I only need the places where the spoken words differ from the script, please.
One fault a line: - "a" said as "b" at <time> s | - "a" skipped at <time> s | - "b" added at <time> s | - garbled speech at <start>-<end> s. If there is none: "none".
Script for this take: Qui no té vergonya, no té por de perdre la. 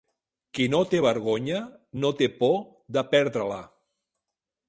none